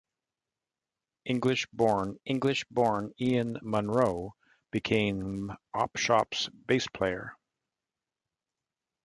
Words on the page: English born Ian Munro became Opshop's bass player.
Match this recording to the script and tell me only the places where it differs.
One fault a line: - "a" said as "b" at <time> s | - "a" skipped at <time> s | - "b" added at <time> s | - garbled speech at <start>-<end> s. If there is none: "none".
- "english born" added at 2.3 s